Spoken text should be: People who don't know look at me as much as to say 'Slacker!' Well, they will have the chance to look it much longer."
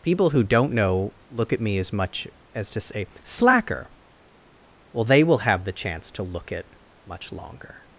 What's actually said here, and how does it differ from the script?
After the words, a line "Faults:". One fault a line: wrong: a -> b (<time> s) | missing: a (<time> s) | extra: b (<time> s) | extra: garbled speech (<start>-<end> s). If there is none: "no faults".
People who don't know look at me as much as to say 'Slacker!' Well, they will have the chance to look it much longer."
Faults:
no faults